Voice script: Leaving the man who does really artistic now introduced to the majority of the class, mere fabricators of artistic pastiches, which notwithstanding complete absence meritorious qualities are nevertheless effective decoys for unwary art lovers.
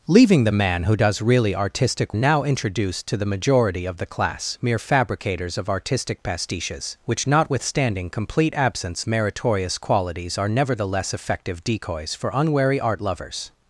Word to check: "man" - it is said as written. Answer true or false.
true